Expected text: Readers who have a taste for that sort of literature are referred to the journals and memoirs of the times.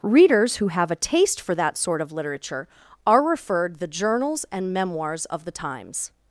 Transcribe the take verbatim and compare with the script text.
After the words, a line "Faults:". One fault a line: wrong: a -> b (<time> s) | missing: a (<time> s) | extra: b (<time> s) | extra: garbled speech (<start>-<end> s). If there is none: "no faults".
Readers who have a taste for that sort of literature are referred the journals and memoirs of the times.
Faults:
missing: to (3.8 s)